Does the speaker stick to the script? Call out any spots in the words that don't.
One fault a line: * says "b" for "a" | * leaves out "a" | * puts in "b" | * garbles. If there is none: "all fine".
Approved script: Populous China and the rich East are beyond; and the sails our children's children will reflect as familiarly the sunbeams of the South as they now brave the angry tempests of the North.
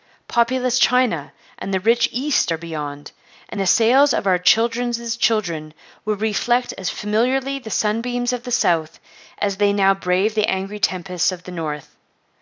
* puts in "of"